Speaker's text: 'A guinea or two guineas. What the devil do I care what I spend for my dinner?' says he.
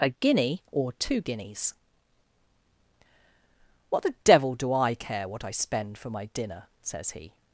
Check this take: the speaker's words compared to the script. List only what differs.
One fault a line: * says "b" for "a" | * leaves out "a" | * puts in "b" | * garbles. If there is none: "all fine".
all fine